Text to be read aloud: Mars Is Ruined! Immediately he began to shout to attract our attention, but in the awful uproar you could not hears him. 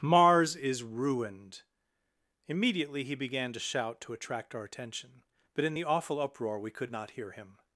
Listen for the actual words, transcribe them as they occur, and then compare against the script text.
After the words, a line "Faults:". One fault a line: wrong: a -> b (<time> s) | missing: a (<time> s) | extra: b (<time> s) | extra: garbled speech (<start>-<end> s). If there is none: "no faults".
Mars Is Ruined! Immediately he began to shout to attract our attention, but in the awful uproar we could not hear him.
Faults:
wrong: you -> we (6.6 s)
wrong: hears -> hear (7.1 s)